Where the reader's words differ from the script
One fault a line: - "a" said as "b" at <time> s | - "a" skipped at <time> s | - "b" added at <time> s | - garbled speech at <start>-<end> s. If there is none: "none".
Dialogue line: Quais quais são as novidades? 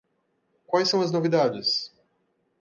- "quais" skipped at 0.9 s